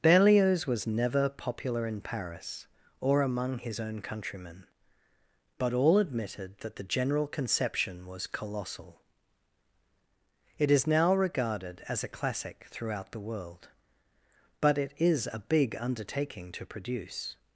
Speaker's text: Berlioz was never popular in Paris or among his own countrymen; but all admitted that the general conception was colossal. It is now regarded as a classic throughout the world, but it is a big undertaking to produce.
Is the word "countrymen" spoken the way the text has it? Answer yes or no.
yes